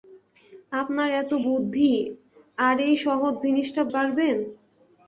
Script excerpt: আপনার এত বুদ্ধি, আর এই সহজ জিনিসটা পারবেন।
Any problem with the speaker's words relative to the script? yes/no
no